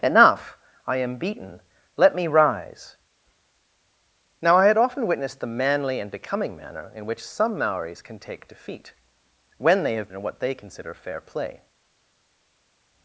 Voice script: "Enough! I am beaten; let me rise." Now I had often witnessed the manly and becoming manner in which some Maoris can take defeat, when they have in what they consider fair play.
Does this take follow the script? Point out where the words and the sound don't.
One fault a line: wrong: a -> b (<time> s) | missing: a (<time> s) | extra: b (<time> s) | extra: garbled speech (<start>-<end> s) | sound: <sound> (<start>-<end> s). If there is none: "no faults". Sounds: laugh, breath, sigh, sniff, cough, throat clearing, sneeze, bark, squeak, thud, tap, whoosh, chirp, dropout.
no faults